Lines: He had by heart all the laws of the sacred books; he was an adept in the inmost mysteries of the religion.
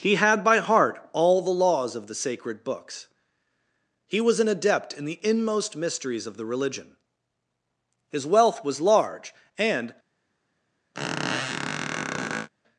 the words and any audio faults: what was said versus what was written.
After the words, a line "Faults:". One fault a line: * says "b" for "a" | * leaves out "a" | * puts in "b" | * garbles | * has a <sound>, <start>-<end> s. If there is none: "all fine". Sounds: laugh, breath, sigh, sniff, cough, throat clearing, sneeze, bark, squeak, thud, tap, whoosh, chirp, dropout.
He had by heart all the laws of the sacred books; he was an adept in the inmost mysteries of the religion. His wealth was large, and
Faults:
* puts in "His wealth was large and"
* has a squeak, 10.9-12.5 s